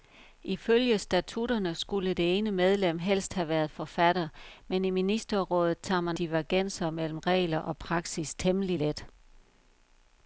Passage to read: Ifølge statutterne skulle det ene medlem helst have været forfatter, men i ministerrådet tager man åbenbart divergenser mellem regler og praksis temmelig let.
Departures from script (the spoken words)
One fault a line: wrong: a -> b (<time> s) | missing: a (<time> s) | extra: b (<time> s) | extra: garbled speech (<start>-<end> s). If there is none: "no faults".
missing: åbenbart (6.2 s)